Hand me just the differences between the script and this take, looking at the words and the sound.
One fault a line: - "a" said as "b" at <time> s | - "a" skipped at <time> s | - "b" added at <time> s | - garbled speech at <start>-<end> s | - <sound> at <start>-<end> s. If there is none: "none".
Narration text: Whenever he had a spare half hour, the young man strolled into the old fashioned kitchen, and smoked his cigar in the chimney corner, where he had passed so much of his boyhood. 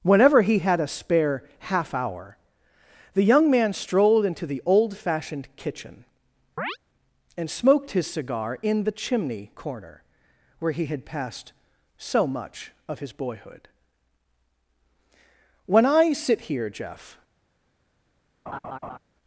- chirp at 6.6-6.8 s
- "When I sit here Jeff" added at 15.7 s
- laugh at 18.5-19.0 s